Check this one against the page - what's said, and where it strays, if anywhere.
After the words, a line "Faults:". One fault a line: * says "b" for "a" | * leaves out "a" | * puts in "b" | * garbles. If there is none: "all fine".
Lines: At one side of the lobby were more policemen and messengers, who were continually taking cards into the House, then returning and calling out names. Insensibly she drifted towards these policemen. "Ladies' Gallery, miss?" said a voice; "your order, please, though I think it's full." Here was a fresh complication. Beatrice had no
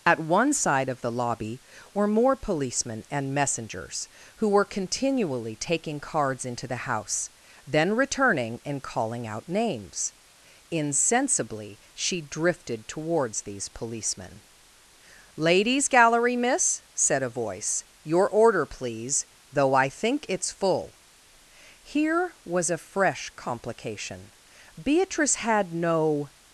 At one side of the lobby were more policemen and messengers, who were continually taking cards into the House, then returning and calling out names. Insensibly she drifted towards these policemen. "Ladies' Gallery, miss?" said a voice; "your order, please, though I think it's full." Here was a fresh complication. Beatrice had no
Faults:
all fine